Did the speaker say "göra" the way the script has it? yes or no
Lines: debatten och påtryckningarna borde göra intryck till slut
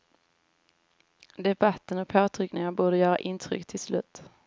yes